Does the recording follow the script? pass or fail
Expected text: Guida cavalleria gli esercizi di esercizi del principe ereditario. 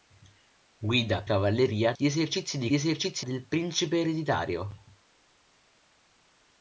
pass